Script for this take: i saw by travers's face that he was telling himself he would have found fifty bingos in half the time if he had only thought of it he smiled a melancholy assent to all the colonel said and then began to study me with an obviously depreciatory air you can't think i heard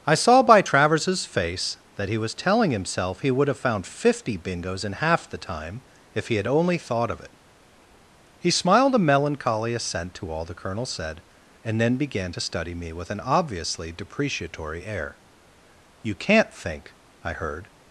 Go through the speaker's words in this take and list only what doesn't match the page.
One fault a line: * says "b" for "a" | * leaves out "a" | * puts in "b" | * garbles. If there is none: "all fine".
all fine